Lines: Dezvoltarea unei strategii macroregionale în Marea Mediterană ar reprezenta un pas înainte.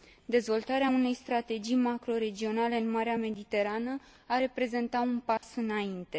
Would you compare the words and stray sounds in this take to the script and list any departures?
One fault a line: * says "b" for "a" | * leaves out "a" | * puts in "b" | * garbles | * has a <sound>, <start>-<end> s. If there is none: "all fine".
* has a dropout, 5.4-5.4 s